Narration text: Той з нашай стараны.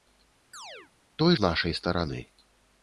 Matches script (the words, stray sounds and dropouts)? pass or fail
fail